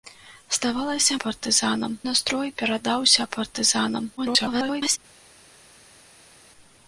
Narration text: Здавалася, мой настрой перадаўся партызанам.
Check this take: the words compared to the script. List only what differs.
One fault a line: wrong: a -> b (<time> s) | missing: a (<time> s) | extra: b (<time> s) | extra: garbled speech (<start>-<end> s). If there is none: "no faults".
wrong: мой -> партызанам (1.3 s)
extra: garbled speech (4.2-5.0 s)